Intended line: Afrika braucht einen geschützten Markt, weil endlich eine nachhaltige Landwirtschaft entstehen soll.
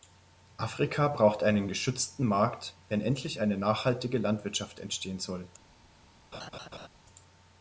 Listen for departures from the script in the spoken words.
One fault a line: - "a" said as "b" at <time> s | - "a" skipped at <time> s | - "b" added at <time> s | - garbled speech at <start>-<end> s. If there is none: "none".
- "weil" said as "wenn" at 2.9 s